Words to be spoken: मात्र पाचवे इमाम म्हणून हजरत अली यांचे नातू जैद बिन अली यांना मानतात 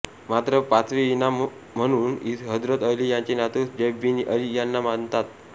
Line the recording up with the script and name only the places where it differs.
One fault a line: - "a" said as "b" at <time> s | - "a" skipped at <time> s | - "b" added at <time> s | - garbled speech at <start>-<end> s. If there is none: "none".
none